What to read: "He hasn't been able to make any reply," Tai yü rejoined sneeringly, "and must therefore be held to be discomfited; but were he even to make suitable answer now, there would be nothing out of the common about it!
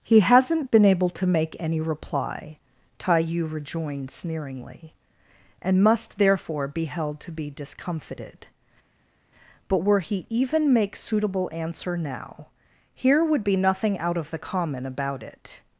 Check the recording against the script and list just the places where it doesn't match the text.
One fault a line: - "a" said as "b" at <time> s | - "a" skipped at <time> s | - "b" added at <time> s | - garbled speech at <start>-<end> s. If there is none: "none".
- "to" skipped at 10.7 s
- "there" said as "here" at 12.9 s